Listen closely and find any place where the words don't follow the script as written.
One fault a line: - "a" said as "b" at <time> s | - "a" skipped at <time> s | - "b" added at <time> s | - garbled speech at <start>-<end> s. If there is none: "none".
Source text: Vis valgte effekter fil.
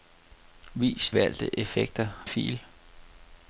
none